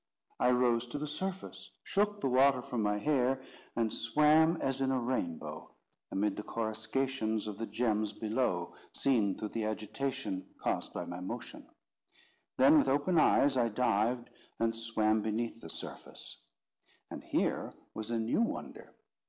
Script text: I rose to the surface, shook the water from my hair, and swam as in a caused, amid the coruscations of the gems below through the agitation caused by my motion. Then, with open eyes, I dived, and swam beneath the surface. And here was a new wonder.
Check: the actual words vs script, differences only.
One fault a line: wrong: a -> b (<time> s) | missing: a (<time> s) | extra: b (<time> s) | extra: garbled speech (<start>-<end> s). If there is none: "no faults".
wrong: caused -> rainbow (5.0 s)
extra: seen (8.9 s)